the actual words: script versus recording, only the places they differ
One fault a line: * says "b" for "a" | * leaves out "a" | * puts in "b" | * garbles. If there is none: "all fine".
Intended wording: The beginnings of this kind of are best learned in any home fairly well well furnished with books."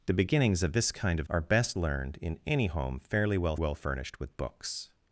all fine